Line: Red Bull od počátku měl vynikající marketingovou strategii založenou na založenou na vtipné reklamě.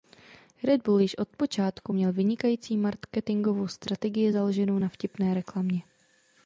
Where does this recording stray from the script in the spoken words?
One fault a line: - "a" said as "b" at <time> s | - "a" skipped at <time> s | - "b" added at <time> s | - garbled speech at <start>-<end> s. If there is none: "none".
- "již" added at 1.0 s
- "založenou na" skipped at 4.9 s